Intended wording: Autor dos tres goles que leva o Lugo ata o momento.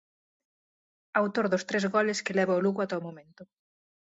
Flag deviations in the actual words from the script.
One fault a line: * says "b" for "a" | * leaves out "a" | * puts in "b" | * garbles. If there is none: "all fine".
all fine